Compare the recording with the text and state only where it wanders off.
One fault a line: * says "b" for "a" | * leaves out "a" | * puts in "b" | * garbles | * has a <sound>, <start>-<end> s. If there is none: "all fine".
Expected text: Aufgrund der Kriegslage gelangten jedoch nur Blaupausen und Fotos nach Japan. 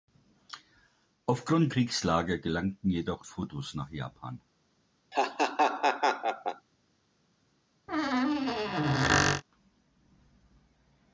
* leaves out "der"
* leaves out "nur Blaupausen und"
* has a laugh, 5.1-6.7 s
* has a squeak, 7.9-9.4 s